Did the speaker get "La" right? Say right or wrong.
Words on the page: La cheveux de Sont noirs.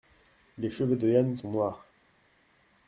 wrong